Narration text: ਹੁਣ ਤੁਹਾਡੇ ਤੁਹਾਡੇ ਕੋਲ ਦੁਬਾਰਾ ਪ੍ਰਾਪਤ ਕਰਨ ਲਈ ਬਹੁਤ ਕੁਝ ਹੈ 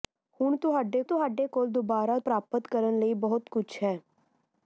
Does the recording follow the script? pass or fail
pass